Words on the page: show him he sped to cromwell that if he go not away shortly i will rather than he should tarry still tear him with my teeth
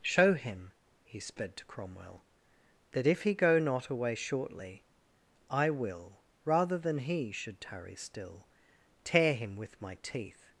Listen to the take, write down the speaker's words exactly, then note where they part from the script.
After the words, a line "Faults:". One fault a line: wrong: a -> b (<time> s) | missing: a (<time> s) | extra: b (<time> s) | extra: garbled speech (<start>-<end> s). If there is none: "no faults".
show him he sped to cromwell that if he go not away shortly i will rather than he should tarry still tear him with my teeth
Faults:
no faults